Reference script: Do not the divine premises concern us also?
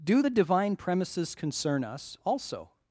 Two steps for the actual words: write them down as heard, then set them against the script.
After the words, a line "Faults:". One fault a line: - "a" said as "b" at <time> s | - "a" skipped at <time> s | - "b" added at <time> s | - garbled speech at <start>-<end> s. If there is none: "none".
Do the divine premises concern us also?
Faults:
- "not" skipped at 0.2 s